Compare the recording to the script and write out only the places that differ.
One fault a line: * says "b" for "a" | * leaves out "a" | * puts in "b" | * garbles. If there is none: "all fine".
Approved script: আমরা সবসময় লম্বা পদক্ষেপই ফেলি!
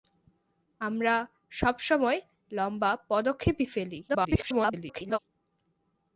* garbles